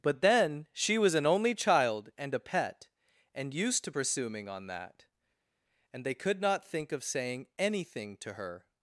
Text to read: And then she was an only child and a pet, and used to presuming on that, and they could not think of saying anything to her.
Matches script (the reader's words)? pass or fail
fail